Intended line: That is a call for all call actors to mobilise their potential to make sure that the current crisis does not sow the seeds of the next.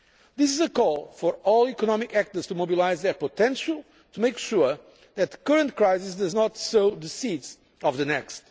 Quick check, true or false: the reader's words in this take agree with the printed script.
false